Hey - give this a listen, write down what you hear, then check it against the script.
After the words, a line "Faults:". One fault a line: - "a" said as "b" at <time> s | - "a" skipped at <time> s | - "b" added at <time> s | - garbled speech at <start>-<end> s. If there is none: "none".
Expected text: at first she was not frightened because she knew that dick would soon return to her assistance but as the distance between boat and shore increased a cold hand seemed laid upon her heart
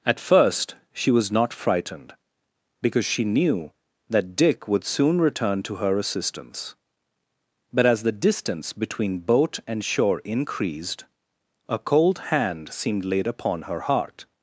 at first she was not frightened because she knew that dick would soon return to her assistance but as the distance between boat and shore increased a cold hand seemed laid upon her heart
Faults:
none